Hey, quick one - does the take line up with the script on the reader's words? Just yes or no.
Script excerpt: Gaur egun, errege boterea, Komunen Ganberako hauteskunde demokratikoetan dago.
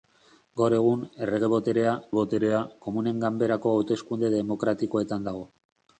no